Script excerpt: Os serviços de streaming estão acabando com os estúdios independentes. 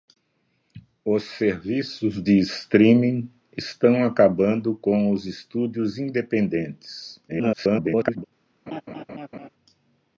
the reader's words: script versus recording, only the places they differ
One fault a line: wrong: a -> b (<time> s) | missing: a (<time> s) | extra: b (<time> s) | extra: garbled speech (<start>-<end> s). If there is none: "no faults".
extra: garbled speech (7.3-8.2 s)